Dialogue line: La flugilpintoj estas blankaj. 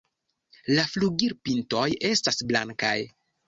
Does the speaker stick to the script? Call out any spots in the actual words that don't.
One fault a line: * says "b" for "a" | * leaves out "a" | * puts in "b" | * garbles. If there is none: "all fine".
all fine